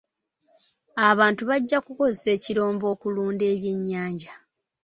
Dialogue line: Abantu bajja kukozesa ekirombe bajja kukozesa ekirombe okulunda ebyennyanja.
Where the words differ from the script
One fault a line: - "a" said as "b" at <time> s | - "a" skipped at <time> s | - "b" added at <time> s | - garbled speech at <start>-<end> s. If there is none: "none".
- "bajja kukozesa ekirombe" skipped at 2.9 s